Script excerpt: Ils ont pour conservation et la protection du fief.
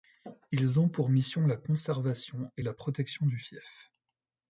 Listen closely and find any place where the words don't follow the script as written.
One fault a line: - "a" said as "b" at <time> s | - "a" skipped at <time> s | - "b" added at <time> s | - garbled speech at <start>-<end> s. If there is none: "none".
- "mission la" added at 1.1 s